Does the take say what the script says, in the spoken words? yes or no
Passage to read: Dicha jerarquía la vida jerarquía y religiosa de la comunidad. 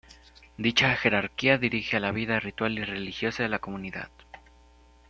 no